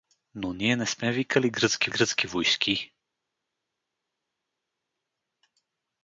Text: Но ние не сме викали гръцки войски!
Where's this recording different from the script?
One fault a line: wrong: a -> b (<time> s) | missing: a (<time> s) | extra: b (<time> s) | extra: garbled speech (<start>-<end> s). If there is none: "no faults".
extra: гръцки (1.9 s)